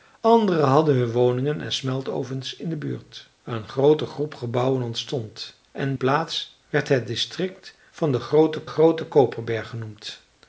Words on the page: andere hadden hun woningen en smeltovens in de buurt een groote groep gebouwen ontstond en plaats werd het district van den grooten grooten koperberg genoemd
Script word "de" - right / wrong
right